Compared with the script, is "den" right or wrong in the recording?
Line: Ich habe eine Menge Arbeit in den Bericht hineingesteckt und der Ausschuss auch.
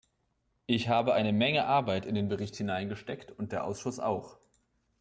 right